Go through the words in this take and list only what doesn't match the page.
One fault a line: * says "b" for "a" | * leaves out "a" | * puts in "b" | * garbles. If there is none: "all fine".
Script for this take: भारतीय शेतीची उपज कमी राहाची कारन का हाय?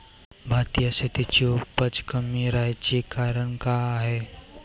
all fine